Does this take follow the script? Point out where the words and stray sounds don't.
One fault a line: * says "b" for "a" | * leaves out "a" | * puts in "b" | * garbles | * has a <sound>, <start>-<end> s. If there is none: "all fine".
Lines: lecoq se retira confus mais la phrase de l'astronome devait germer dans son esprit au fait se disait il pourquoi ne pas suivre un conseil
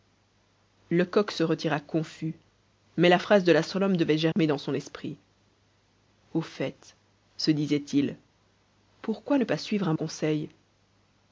* has a dropout, 4.3-4.4 s